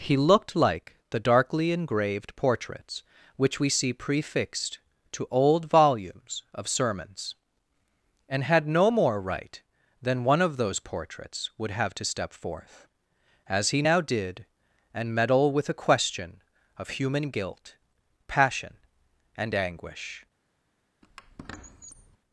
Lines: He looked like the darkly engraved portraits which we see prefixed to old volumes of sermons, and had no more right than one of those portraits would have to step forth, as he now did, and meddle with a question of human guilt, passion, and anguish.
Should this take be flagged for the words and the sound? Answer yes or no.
yes